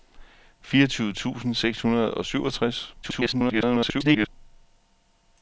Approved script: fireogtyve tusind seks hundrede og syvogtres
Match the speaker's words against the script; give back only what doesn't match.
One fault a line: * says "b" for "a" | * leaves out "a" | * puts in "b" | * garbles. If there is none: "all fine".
* garbles